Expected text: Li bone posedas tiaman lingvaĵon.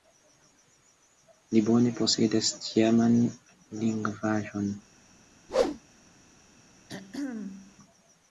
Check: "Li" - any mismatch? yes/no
no